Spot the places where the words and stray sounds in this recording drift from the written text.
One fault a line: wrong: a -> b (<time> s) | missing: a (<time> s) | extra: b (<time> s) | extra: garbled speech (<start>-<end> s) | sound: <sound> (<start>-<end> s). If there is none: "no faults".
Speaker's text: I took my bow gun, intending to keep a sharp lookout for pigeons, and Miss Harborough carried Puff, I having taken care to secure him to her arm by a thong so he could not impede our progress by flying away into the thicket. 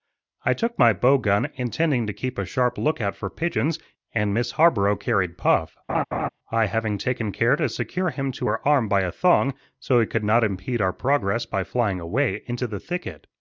sound: laugh (5.9-6.3 s)